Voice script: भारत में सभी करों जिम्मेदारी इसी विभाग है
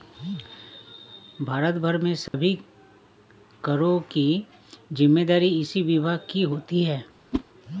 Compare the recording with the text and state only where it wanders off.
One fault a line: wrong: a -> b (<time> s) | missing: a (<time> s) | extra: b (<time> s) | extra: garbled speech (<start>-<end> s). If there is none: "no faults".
extra: भर (1.8 s)
extra: की (4.1 s)
extra: की होती (6.3 s)